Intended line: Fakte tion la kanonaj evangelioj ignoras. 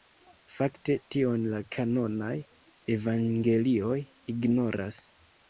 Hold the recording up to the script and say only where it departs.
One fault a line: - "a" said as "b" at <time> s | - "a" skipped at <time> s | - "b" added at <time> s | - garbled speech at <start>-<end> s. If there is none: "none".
none